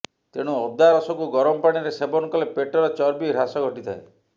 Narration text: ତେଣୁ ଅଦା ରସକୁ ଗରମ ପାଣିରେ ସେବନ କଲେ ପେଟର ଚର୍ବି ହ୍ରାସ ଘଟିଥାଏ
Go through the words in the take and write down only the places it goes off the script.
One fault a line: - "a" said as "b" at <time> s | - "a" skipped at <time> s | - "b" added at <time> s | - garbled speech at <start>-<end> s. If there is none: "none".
none